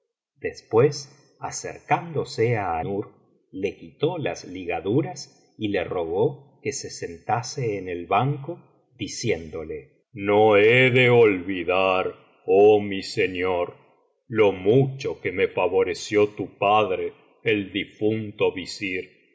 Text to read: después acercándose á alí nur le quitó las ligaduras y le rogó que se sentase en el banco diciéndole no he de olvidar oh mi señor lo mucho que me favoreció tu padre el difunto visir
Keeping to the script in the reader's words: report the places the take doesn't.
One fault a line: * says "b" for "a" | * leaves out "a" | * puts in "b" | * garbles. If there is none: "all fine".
* leaves out "alí"